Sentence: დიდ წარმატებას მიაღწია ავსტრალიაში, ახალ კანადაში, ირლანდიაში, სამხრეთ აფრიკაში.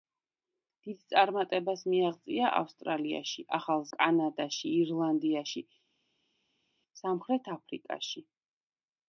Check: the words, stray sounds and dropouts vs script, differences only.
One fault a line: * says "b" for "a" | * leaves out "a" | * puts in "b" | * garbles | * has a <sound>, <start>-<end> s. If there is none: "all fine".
all fine